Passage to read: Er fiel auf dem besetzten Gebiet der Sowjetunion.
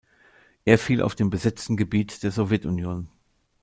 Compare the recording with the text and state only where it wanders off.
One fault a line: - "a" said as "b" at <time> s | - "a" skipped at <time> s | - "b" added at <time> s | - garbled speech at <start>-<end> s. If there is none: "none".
none